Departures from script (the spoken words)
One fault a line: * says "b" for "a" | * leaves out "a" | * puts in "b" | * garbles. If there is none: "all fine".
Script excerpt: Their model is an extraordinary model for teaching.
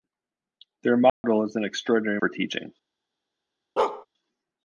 * leaves out "model"